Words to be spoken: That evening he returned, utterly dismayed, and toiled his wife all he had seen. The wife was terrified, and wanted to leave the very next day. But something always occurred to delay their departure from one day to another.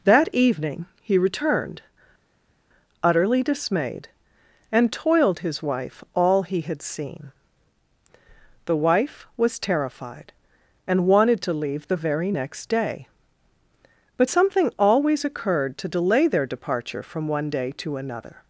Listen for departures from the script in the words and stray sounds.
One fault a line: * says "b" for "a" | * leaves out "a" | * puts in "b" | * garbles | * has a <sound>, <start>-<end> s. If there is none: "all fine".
all fine